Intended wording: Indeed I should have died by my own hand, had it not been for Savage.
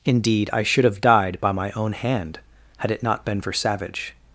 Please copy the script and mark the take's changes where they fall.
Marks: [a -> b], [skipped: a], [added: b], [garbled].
Indeed I should have died by my own hand, had it not been for Savage.